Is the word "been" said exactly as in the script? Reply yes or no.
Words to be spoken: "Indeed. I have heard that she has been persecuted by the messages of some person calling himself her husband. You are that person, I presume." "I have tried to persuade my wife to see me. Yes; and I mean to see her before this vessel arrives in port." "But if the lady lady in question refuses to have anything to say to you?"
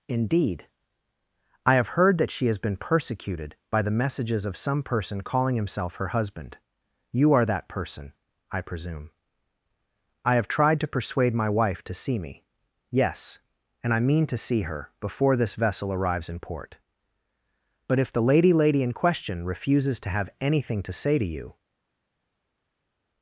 yes